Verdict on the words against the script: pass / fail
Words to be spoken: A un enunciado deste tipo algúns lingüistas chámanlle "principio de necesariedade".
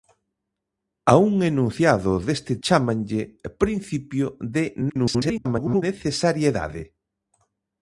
fail